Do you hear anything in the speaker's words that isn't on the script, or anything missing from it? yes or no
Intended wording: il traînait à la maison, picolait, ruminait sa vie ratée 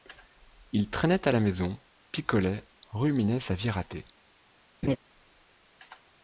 no